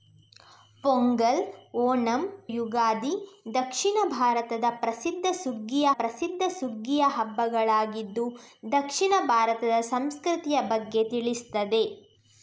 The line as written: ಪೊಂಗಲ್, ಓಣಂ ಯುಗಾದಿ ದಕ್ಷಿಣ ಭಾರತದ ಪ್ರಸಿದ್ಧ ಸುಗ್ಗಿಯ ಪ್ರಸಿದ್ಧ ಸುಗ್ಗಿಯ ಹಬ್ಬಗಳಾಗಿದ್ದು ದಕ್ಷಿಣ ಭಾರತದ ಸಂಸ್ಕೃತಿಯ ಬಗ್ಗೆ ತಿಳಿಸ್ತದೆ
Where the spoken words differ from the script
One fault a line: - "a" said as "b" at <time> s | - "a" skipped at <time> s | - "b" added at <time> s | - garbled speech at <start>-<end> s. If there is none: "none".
none